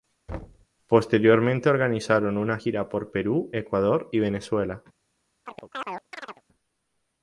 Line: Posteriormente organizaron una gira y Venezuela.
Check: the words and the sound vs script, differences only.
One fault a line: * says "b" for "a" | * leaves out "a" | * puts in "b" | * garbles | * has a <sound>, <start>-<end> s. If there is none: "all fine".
* has a thud, 0.3-0.7 s
* puts in "por Perú Ecuador"
* has a chirp, 5.5-6.4 s